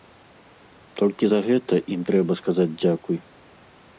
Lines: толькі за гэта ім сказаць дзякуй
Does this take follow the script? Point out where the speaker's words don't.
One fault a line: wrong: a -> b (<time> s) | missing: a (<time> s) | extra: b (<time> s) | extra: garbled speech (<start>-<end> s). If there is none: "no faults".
extra: трэба (2.1 s)